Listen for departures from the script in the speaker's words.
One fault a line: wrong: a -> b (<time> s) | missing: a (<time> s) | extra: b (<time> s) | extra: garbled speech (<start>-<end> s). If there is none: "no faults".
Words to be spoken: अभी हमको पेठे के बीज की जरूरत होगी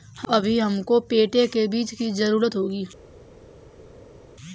no faults